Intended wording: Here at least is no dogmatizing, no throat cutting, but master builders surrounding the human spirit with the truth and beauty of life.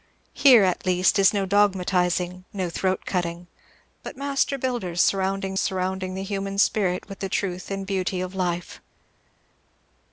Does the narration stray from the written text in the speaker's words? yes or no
yes